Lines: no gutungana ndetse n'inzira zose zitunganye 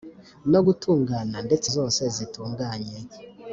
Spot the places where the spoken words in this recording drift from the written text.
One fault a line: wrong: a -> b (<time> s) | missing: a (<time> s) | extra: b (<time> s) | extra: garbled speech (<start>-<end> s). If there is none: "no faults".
missing: n'inzira (1.7 s)